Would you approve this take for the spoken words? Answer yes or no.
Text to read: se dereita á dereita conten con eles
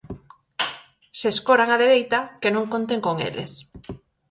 no